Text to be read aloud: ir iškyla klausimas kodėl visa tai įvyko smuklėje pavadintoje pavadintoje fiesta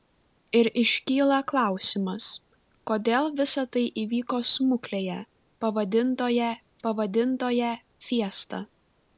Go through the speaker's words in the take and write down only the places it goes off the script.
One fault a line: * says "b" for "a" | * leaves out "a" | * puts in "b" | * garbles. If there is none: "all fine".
all fine